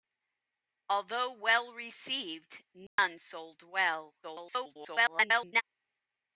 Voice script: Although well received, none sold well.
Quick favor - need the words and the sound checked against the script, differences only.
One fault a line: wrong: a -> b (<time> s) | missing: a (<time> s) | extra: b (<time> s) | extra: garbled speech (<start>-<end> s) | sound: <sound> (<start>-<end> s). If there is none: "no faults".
sound: dropout (2.9-3.0 s)
extra: garbled speech (4.2-5.6 s)